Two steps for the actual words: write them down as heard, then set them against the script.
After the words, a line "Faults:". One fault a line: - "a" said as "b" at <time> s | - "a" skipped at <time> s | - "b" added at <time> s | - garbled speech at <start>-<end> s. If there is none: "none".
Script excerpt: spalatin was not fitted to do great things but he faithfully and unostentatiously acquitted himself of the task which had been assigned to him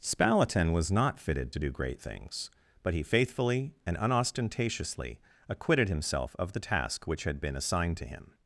spalatin was not fitted to do great things but he faithfully and unostentatiously acquitted himself of the task which had been assigned to him
Faults:
none